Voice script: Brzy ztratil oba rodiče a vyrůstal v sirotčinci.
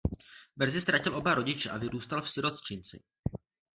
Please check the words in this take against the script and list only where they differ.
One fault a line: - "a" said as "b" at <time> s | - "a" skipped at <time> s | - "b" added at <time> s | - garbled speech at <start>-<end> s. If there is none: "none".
none